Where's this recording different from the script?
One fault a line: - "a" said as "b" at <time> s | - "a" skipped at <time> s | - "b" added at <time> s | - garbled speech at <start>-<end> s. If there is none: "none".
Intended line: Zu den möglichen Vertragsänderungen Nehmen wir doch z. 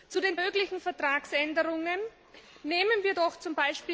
none